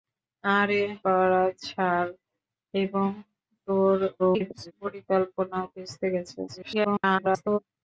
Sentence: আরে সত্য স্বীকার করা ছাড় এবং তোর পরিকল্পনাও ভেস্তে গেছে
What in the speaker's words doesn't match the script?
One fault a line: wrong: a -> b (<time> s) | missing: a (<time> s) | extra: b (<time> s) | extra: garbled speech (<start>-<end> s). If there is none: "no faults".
missing: সত্য স্বীকার (0.8 s)
extra: garbled speech (4.2-4.7 s)
extra: garbled speech (6.5-7.6 s)